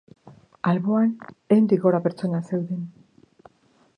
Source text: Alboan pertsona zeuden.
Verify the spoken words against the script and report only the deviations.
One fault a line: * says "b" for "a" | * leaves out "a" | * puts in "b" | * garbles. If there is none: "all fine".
* puts in "ehundik gora"